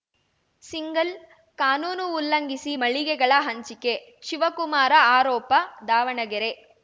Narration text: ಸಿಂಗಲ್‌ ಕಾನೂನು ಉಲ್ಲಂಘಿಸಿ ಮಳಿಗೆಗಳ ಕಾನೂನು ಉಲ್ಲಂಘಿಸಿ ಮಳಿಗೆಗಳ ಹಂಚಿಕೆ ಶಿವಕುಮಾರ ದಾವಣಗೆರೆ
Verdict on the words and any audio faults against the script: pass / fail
fail